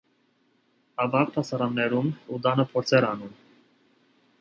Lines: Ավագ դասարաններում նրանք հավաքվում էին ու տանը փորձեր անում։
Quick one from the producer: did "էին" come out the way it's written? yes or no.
no